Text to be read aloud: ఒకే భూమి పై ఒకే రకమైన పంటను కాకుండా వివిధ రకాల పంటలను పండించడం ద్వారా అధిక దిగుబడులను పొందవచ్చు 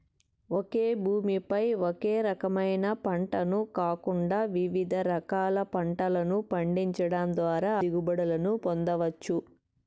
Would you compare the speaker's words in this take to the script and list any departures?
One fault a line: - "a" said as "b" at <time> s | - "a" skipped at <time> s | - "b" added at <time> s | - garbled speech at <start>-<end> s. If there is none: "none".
- "అధిక" skipped at 7.7 s